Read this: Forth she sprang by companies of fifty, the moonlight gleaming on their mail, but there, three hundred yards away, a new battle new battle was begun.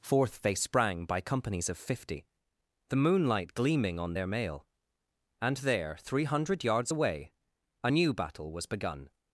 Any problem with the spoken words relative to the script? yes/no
yes